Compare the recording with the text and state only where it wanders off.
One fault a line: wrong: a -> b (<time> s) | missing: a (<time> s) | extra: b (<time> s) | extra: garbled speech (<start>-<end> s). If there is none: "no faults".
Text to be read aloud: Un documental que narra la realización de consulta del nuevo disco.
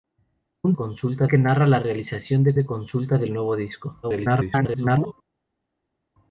wrong: documental -> consulta (0.7 s)
extra: de (2.5 s)
extra: garbled speech (4.0-5.1 s)